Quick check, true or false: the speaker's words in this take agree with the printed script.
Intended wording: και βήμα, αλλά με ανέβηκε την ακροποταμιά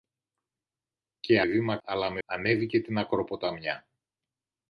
true